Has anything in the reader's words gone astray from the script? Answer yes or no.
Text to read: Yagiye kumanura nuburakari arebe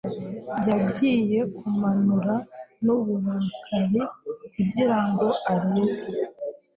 yes